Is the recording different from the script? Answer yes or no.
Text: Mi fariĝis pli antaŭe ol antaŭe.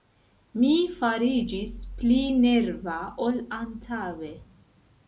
yes